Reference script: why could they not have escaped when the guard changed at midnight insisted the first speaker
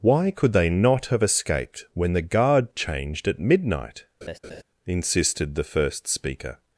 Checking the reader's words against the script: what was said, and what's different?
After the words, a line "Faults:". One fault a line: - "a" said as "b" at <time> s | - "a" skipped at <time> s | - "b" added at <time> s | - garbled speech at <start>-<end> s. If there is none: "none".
why could they not have escaped when the guard changed at midnight insisted the first speaker
Faults:
none